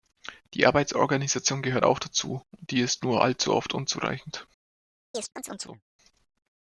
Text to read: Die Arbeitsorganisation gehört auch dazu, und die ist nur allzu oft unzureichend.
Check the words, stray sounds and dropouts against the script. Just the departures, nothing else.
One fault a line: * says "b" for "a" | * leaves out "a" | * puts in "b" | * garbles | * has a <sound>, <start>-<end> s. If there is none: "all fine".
* has a chirp, 5.1-5.8 s